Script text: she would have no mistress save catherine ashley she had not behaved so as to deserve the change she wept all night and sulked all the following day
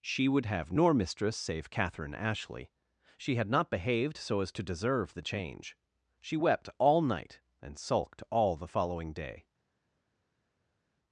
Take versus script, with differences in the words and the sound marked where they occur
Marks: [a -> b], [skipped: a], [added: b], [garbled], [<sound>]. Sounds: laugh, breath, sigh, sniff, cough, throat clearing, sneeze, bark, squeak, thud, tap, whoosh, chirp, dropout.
she would have [no -> nor] mistress save catherine ashley she had not behaved so as to deserve the change she wept all night and sulked all the following day